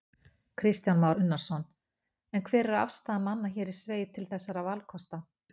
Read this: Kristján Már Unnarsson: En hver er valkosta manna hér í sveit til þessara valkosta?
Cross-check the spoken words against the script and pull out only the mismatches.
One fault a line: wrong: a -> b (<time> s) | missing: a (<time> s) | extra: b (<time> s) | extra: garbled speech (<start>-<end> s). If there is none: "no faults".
wrong: valkosta -> afstaða (2.8 s)